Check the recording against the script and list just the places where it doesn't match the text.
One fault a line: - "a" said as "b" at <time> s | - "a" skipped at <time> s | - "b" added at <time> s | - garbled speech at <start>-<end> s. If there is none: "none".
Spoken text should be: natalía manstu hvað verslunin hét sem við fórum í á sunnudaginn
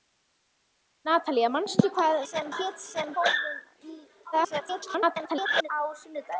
- "verslunin" said as "sem" at 2.2 s
- "við" skipped at 3.1 s
- garbled speech at 4.3-5.7 s